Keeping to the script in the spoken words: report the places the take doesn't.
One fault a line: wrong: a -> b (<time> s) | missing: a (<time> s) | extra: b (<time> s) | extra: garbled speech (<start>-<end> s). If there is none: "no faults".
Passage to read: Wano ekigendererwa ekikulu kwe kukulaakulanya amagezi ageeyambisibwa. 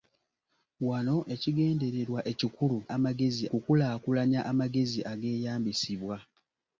wrong: kwe -> amagezi (2.9 s)